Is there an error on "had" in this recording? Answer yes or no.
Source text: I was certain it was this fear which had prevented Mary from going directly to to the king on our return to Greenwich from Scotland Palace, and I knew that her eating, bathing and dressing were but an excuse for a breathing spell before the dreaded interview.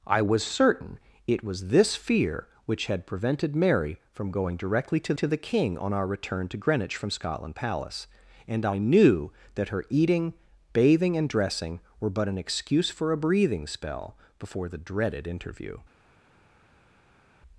no